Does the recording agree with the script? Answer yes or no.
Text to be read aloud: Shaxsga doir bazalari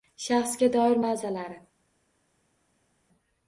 yes